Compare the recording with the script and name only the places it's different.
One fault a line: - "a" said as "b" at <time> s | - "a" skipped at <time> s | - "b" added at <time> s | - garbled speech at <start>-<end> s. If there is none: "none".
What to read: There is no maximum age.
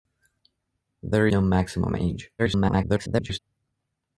- "is" skipped at 1.3 s
- garbled speech at 2.4-3.4 s